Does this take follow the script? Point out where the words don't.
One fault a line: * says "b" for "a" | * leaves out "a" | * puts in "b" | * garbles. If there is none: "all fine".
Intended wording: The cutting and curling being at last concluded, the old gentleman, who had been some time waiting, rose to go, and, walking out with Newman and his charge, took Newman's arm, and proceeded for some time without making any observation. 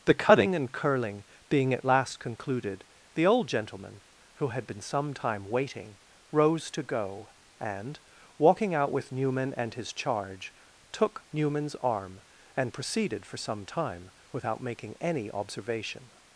all fine